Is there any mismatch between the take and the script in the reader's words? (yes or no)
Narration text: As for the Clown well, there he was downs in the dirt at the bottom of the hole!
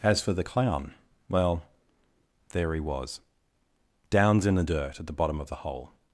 no